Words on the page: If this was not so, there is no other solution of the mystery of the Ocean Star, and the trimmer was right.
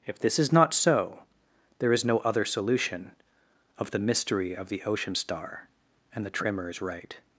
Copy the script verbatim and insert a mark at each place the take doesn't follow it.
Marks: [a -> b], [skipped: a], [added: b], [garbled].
If this [was -> is] not so, there is no other solution of the mystery of the Ocean Star, and the trimmer [was -> is] right.